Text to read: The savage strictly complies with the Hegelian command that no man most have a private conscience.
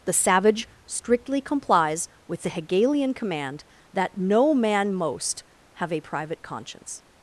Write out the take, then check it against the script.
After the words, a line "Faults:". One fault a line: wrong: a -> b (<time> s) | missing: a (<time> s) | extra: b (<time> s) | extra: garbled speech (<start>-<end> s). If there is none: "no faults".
The savage strictly complies with the Hegelian command that no man most have a private conscience.
Faults:
no faults